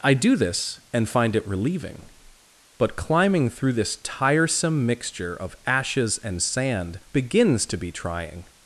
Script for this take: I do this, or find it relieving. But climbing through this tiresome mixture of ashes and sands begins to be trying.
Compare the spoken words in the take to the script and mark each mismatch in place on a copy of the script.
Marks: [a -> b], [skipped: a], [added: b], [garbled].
I do this, [or -> and] find it relieving. But climbing through this tiresome mixture of ashes and [sands -> sand] begins to be trying.